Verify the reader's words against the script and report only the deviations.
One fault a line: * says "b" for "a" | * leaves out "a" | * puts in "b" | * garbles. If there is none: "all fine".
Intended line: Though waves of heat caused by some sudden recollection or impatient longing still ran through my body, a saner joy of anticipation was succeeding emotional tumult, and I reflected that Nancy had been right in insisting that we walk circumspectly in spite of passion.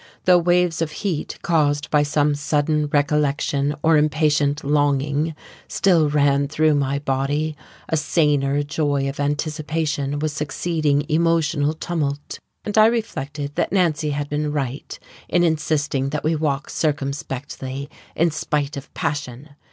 all fine